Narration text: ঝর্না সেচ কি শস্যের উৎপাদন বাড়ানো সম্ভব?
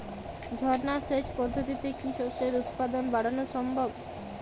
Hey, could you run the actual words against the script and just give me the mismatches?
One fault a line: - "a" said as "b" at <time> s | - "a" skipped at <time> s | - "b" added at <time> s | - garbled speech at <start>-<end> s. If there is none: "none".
- "পদ্ধতিতে" added at 1.4 s